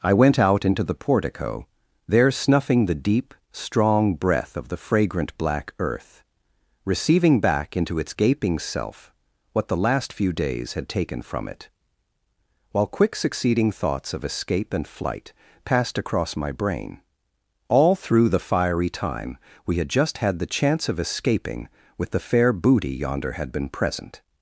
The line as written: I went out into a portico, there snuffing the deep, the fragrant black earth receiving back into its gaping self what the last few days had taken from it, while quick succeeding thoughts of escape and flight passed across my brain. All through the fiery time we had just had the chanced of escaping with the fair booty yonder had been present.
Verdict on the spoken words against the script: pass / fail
fail